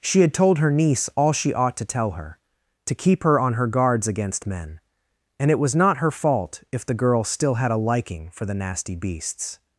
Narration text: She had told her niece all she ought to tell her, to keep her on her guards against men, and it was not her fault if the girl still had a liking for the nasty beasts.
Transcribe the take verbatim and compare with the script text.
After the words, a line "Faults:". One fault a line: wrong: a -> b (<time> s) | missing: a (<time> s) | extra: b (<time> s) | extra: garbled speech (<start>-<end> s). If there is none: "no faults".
She had told her niece all she ought to tell her, to keep her on her guards against men, and it was not her fault if the girl still had a liking for the nasty beasts.
Faults:
no faults